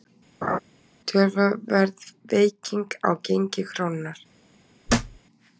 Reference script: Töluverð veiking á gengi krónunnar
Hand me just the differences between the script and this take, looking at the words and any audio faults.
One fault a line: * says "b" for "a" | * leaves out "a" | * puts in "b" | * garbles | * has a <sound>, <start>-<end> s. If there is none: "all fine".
* has a laugh, 0.4-0.6 s
* has a thud, 4.9-5.2 s